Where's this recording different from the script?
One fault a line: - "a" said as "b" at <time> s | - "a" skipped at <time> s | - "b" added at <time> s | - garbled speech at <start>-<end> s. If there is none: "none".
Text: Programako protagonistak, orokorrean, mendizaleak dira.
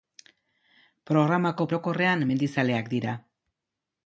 - "protagonistak" skipped at 1.7 s